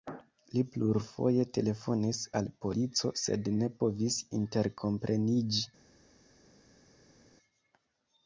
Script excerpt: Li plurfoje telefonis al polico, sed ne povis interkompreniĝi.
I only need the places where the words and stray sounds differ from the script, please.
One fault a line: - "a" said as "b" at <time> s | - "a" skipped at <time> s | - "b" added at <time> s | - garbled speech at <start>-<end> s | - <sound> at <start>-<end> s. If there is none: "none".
none